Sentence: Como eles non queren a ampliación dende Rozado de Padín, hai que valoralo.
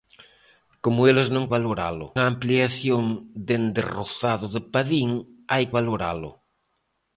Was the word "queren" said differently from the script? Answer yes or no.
yes